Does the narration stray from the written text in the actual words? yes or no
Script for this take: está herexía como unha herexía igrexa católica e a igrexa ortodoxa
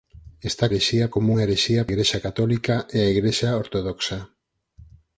no